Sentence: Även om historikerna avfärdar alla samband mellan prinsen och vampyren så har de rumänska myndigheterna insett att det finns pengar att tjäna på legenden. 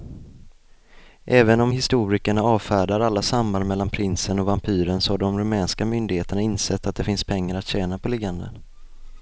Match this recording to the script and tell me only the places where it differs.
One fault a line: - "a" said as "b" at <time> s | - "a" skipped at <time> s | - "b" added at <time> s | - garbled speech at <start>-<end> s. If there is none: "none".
none